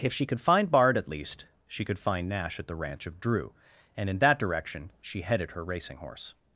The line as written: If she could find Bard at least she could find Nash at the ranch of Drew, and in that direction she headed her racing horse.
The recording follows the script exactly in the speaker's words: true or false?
true